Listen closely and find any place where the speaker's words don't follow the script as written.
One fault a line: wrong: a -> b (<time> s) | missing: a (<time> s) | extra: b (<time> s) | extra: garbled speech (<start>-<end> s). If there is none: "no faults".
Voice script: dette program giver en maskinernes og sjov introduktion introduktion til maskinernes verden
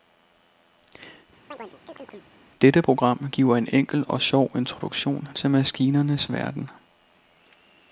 wrong: maskinernes -> enkel (3.7 s)
missing: introduktion (5.3 s)